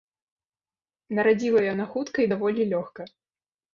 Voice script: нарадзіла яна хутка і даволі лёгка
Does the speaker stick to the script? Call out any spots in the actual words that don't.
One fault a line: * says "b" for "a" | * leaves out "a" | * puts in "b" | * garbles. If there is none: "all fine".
all fine